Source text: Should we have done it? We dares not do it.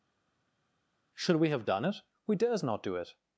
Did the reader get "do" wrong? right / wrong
right